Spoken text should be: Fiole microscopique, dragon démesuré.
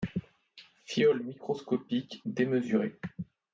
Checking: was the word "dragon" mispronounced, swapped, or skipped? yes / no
yes